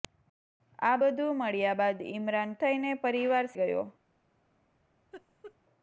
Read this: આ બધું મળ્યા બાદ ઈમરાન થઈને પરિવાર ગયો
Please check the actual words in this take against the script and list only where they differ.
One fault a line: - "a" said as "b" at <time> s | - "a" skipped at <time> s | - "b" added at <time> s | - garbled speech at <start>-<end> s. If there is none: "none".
none